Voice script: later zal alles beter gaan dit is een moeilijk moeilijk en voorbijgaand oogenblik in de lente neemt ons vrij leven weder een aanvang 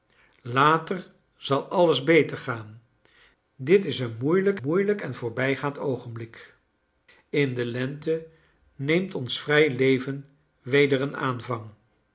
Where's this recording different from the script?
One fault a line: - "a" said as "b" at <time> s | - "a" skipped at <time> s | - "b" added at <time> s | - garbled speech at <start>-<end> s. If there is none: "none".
none